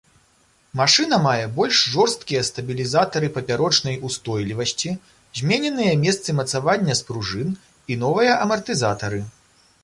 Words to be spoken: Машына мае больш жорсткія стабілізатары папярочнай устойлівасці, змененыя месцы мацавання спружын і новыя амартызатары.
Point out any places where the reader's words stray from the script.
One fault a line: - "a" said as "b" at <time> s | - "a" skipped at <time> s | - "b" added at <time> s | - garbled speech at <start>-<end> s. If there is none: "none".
none